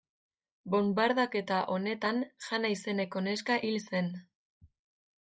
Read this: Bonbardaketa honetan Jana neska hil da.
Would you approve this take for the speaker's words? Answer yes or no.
no